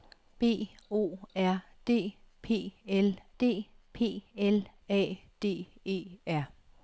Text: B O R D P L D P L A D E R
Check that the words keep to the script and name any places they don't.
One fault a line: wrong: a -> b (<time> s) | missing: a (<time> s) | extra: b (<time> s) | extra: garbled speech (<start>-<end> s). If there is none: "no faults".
no faults